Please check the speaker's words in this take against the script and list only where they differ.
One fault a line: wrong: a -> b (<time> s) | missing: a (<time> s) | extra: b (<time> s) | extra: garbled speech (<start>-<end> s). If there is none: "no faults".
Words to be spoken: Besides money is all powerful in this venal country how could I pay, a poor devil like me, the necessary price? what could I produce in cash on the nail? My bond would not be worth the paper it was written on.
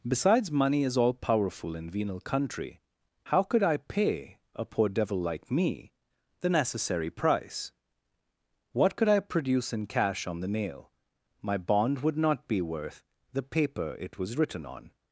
missing: this (1.9 s)